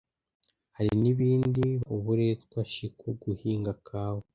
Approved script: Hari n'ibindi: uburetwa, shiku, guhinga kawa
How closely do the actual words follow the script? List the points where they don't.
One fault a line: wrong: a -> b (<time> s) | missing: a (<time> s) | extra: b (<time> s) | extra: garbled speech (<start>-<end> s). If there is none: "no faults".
no faults